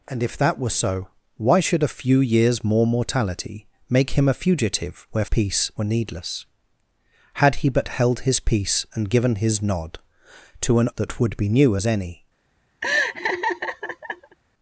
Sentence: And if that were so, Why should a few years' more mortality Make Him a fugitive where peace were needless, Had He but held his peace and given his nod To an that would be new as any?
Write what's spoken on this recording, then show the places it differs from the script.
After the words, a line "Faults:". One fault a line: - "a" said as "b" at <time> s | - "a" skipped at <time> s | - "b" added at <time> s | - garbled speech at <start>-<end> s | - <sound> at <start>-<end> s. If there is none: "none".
And if that were so, Why should a few years' more mortality Make Him a fugitive where peace were needless, Had He but held his peace and given his nod To an that would be new as any?
Faults:
- laugh at 12.8-14.4 s